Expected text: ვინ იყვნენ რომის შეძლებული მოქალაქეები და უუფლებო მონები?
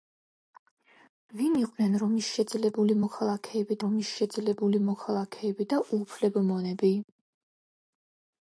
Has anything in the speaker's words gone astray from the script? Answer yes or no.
yes